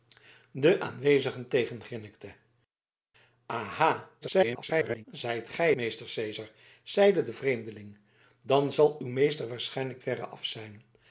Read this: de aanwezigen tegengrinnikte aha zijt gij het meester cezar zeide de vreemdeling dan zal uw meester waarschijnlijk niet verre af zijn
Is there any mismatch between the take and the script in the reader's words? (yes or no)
yes